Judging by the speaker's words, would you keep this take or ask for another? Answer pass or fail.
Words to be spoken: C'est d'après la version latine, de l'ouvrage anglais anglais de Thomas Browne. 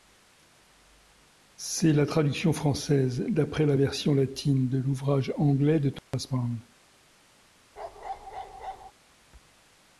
fail